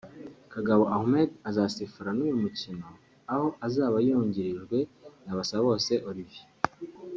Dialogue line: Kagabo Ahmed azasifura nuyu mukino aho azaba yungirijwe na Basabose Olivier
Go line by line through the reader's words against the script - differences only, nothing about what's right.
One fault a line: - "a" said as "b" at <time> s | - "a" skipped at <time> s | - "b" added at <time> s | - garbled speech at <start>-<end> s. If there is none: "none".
none